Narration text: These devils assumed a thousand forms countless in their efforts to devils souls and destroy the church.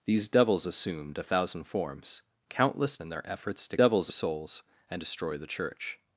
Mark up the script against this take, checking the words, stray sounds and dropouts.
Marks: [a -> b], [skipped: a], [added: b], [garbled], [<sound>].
These devils assumed a thousand forms countless in their efforts to devils souls and destroy the church.